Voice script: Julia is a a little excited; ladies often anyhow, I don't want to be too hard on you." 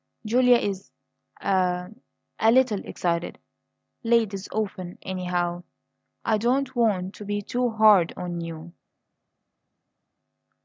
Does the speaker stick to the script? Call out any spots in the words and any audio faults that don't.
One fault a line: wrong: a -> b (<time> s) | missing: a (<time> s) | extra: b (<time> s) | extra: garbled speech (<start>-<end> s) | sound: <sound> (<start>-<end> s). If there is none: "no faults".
no faults